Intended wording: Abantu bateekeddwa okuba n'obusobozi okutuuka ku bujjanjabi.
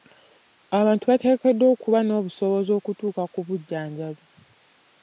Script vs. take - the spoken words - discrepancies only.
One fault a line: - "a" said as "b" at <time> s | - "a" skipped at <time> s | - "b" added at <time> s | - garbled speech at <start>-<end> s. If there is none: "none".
none